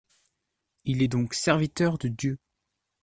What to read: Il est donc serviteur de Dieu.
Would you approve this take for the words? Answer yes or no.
yes